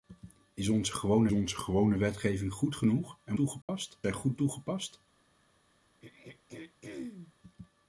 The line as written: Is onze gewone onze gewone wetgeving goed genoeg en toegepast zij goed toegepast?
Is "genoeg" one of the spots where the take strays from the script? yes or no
no